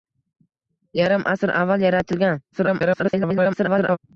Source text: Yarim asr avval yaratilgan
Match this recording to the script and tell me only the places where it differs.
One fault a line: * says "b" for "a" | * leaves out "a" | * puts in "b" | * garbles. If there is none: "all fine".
* garbles